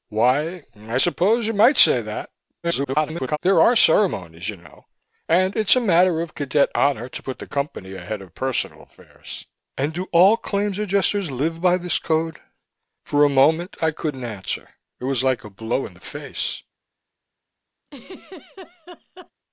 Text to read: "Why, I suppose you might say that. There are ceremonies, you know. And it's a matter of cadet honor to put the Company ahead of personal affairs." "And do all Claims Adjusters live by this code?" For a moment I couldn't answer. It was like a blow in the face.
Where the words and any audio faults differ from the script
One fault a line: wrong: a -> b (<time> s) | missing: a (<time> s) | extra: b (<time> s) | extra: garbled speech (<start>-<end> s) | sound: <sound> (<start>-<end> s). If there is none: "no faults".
extra: garbled speech (2.6-3.4 s)
sound: laugh (17.9-19.3 s)